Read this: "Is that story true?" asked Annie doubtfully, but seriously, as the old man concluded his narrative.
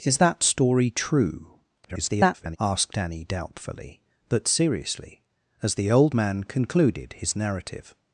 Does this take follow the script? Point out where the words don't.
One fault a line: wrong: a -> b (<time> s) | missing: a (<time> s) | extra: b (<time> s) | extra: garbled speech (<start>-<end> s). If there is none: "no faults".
extra: garbled speech (1.8-2.6 s)